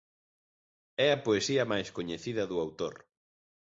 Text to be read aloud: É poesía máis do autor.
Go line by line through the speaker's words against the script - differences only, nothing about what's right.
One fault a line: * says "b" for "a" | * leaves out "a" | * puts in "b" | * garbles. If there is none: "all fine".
* puts in "a"
* puts in "coñecida"